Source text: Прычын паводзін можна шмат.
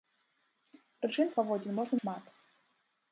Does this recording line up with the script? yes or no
yes